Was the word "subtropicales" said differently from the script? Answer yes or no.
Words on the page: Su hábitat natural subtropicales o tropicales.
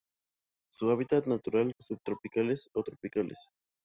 no